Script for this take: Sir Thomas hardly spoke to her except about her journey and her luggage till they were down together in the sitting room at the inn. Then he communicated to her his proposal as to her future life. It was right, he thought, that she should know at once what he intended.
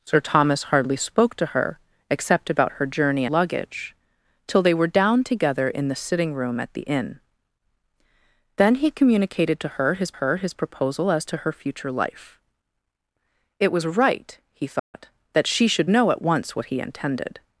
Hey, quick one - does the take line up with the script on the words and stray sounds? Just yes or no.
no